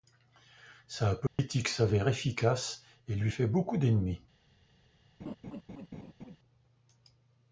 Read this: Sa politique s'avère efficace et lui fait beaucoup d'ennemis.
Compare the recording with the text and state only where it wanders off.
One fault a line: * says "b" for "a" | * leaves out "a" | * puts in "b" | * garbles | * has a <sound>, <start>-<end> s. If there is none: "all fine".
* has a dropout, 1.3-1.4 s
* has a laugh, 5.2-6.4 s